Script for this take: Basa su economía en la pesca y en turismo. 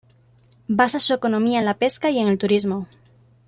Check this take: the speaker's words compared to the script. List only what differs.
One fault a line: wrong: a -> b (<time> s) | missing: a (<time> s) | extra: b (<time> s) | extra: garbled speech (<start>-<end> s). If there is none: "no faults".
extra: el (2.3 s)